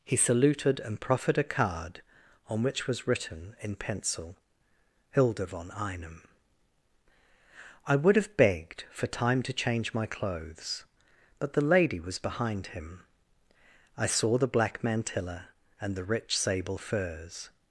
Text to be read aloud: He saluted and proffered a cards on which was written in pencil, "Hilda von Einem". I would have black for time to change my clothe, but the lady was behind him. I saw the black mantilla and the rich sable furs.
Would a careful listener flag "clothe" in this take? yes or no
yes